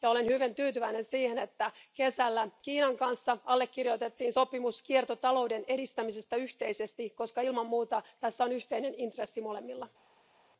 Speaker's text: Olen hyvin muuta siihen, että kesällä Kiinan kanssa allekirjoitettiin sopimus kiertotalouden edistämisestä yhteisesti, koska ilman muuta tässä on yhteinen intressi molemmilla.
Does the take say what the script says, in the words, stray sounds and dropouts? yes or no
no